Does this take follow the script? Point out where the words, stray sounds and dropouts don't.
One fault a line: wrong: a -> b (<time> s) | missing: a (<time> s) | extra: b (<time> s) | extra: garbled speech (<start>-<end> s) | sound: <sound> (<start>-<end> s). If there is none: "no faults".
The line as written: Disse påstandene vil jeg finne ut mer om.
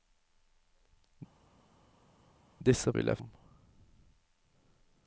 missing: påstandene (2.9 s)
missing: finne ut mer (3.2 s)